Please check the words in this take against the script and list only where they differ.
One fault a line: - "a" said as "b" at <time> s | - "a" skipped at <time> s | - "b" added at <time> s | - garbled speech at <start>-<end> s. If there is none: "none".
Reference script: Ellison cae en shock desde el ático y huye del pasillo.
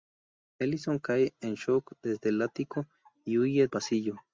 - "del" skipped at 3.7 s